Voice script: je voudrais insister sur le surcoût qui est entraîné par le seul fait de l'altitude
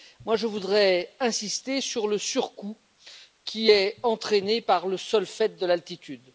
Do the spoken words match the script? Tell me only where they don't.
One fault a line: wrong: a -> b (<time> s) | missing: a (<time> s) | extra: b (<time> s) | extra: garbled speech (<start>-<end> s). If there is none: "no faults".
no faults